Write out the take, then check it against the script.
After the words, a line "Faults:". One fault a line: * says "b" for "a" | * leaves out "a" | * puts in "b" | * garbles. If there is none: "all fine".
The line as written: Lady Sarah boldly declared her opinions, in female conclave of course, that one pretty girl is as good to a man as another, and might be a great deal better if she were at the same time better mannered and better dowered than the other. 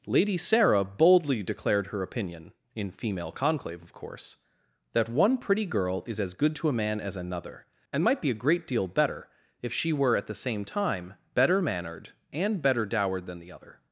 Lady Sarah boldly declared her opinion, in female conclave of course, that one pretty girl is as good to a man as another, and might be a great deal better if she were at the same time better mannered and better dowered than the other.
Faults:
* says "opinion" for "opinions"